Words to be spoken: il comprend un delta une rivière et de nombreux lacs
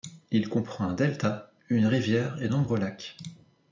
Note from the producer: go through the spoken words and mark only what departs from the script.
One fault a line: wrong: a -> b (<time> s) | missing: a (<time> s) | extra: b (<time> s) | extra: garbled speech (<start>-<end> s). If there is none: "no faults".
missing: de (2.5 s)